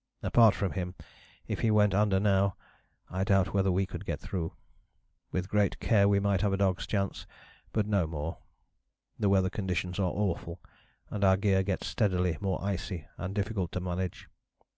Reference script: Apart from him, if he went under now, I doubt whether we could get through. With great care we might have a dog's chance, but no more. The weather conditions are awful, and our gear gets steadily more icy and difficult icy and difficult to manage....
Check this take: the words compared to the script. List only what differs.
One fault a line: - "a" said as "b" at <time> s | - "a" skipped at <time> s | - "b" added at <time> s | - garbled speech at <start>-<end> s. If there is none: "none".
- "icy and difficult" skipped at 13.7 s